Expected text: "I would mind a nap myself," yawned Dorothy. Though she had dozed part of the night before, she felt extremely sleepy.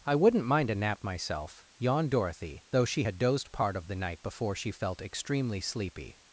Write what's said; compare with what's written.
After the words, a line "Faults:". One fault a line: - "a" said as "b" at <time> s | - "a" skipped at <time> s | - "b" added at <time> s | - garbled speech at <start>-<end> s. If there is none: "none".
"I wouldn't mind a nap myself," yawned Dorothy. Though she had dozed part of the night before, she felt extremely sleepy.
Faults:
- "would" said as "wouldn't" at 0.1 s